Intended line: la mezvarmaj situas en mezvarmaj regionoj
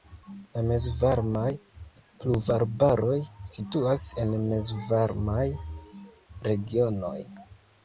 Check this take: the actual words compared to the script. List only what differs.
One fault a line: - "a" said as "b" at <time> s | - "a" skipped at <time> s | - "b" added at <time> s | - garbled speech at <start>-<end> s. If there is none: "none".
- "pluvarbaroj" added at 2.2 s